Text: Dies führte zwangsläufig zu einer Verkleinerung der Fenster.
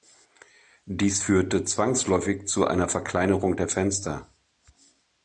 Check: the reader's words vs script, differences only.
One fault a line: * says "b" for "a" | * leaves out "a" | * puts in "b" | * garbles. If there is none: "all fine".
all fine